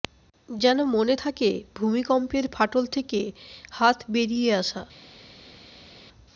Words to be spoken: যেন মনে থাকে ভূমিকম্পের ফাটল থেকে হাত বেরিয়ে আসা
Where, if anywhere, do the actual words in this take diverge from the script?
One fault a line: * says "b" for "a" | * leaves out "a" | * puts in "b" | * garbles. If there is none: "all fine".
all fine